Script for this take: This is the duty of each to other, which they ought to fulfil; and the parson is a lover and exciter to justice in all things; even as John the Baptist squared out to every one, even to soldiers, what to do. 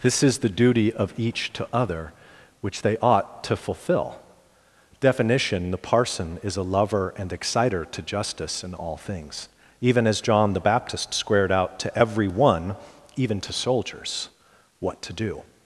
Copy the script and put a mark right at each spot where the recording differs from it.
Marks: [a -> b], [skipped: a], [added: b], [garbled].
This is the duty of each to other, which they ought to [fulfil; and -> fulfill definition] the parson is a lover and exciter to justice in all things; even as John the Baptist squared out to every one, even to soldiers, what to do.